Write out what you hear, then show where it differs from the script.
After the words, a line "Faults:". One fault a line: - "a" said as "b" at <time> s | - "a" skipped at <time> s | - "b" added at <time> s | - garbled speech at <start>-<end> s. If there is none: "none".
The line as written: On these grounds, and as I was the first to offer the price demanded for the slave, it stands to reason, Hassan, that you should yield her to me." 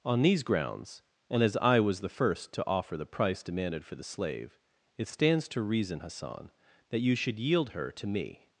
On these grounds, and as I was the first to offer the price demanded for the slave, it stands to reason, Hassan, that you should yield her to me."
Faults:
none